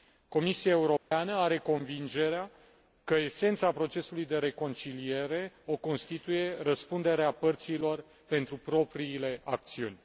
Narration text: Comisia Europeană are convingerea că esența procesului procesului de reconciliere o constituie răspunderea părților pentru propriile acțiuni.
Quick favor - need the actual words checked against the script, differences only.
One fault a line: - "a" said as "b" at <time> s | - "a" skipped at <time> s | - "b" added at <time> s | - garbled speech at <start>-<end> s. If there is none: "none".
- "procesului" skipped at 4.3 s